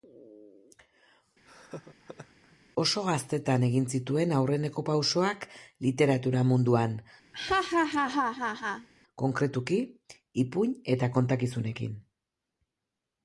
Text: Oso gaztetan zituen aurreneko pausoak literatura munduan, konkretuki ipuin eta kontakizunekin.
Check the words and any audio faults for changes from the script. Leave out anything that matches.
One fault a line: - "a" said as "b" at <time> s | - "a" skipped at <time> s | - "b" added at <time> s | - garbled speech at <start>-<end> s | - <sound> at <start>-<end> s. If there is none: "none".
- laugh at 1.4-2.6 s
- "egin" added at 3.7 s
- laugh at 7.3-8.9 s